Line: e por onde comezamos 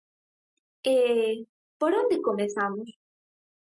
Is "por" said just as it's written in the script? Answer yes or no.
yes